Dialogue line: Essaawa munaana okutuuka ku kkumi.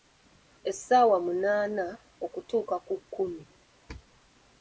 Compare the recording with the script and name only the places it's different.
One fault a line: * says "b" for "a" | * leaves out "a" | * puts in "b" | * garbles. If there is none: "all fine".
all fine